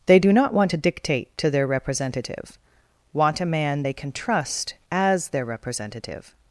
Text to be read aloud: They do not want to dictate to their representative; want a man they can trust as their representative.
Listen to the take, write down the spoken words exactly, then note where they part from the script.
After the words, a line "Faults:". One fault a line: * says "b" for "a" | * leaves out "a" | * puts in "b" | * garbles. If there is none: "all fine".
They do not want to dictate to their representative; want a man they can trust as their representative.
Faults:
all fine